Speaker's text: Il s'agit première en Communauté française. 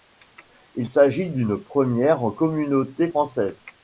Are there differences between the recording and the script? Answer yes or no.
yes